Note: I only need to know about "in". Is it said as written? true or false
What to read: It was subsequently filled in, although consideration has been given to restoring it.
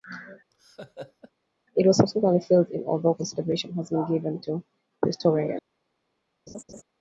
true